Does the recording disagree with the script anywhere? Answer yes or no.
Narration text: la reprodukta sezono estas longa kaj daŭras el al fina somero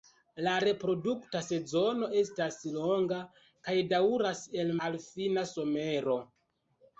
no